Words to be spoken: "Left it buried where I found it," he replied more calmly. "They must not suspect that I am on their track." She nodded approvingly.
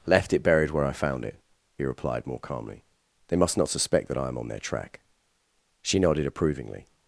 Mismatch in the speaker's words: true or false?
false